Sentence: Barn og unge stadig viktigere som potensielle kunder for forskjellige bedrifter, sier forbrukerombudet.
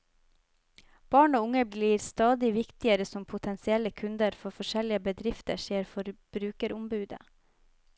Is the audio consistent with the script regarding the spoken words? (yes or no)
no